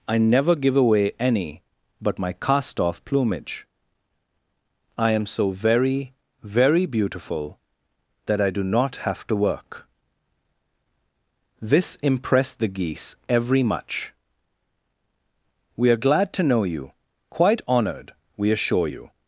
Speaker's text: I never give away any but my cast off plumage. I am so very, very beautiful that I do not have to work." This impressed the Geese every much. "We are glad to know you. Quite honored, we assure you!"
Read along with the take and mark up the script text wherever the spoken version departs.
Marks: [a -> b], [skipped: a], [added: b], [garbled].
I never give away any but my cast off plumage. I am so very, very beautiful that I do not have to work." This impressed the Geese every much. "We are glad to know you. Quite honored, we assure you!"